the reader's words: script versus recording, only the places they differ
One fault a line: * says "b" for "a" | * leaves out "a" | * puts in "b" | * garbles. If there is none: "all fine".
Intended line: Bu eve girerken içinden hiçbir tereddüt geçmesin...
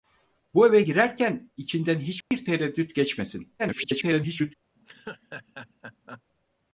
* garbles